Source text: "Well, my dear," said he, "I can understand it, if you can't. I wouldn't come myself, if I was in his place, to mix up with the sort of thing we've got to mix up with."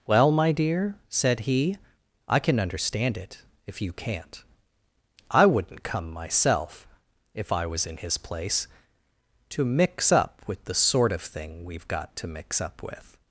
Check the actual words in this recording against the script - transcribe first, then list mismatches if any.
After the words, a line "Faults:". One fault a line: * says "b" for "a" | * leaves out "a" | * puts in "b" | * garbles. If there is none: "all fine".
"Well, my dear," said he, "I can understand it, if you can't. I wouldn't come myself, if I was in his place, to mix up with the sort of thing we've got to mix up with."
Faults:
all fine